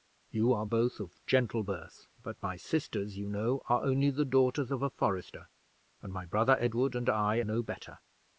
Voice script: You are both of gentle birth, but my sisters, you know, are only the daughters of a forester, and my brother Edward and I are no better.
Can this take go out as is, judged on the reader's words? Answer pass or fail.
fail